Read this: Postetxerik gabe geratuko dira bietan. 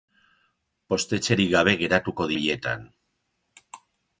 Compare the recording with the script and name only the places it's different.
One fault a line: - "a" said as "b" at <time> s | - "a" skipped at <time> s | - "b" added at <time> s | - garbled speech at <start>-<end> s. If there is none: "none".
- "dira" skipped at 2.3 s